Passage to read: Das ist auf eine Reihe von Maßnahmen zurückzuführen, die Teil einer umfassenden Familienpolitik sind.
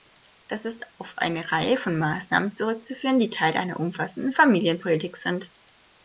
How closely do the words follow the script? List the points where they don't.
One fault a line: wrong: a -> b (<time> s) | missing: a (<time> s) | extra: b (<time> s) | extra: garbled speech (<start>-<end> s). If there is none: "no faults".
no faults